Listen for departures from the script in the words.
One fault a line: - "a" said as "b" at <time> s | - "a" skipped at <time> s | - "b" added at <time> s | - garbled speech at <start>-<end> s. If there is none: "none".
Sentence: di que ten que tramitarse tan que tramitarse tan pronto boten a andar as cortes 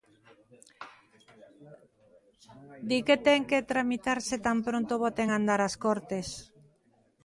- "que tramitarse tan" skipped at 4.6 s